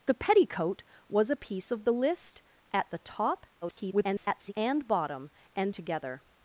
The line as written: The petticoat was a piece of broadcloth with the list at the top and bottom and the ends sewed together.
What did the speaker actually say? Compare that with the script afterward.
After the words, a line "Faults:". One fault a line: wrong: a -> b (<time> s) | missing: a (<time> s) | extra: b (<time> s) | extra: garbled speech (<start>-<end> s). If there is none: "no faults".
The petticoat was a piece of the list at the top [garbled] and bottom and together.
Faults:
missing: broadcloth with (1.9 s)
extra: garbled speech (3.6-4.5 s)
missing: the ends sewed (5.7 s)